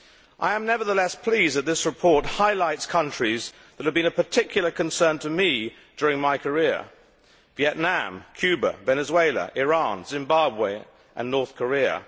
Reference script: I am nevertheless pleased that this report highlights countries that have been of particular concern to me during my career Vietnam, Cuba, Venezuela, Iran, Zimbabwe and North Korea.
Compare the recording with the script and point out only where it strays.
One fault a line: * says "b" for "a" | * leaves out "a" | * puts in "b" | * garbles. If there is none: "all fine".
all fine